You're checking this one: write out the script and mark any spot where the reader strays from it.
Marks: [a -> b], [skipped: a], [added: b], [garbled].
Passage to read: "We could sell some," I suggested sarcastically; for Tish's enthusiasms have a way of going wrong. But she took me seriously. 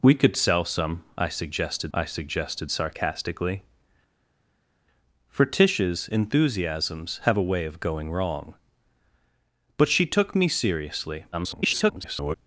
"We could sell some," I suggested [added: I suggested] sarcastically; for Tish's enthusiasms have a way of going wrong. But she took me seriously. [garbled]